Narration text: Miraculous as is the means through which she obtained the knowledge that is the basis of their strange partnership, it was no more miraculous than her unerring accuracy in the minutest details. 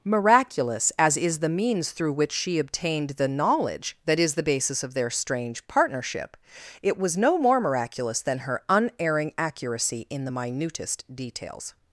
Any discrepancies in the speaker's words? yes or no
no